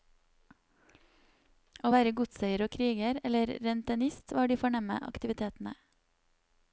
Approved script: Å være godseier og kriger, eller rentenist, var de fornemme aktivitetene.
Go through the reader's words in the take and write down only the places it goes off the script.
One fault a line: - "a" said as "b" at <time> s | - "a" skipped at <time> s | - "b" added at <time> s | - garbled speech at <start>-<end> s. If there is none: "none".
none